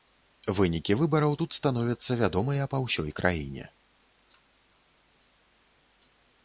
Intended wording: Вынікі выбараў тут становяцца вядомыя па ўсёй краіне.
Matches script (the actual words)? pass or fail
pass